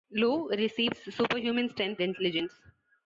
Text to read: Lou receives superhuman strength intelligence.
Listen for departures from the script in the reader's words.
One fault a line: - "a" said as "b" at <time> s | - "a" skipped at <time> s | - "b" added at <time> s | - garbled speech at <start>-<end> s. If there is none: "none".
none